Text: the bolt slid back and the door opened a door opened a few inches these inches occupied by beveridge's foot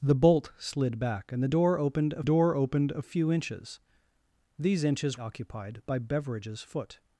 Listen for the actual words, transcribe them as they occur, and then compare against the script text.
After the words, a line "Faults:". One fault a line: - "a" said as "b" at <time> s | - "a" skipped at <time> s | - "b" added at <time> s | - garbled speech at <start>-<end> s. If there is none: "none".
the bolt slid back and the door opened a door opened a few inches these inches occupied by beveridge's foot
Faults:
none